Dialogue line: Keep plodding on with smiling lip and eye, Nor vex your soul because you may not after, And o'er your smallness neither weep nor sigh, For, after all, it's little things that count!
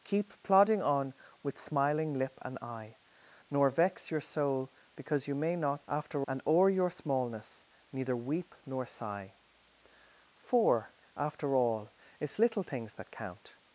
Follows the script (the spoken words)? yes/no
yes